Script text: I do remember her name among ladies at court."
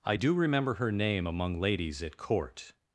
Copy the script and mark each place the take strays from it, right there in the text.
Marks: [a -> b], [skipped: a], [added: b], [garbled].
I do remember her name among ladies at court."